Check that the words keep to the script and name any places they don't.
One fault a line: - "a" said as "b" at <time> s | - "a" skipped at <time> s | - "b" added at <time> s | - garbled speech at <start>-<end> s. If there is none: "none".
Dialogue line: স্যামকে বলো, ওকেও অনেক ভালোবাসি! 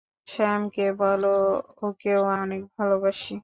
none